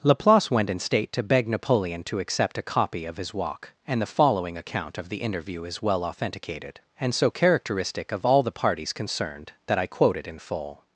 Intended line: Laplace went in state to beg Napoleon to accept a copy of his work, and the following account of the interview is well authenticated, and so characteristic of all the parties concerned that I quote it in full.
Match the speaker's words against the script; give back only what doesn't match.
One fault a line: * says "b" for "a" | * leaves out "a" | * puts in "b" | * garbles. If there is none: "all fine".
* says "walk" for "work"